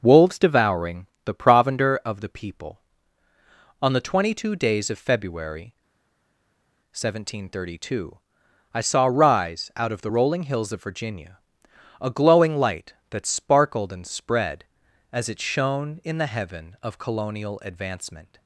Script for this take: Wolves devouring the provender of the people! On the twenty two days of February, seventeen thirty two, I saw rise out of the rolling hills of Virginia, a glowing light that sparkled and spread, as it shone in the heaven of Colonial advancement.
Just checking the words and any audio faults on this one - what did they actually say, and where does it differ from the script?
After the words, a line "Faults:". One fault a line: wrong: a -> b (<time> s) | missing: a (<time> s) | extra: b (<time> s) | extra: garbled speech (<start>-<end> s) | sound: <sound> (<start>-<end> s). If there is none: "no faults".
Wolves devouring the provender of the people! On the twenty two days of February, seventeen thirty two, I saw rise out of the rolling hills of Virginia, a glowing light that sparkled and spread, as it shone in the heaven of Colonial advancement.
Faults:
no faults